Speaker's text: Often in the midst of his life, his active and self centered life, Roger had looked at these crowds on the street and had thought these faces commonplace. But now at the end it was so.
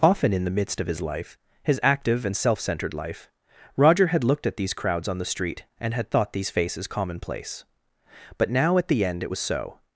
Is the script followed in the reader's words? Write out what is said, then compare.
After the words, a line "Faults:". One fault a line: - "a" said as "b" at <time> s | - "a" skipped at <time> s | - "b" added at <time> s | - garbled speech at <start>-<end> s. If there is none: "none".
Often in the midst of his life, his active and self centered life, Roger had looked at these crowds on the street and had thought these faces commonplace. But now at the end it was so.
Faults:
none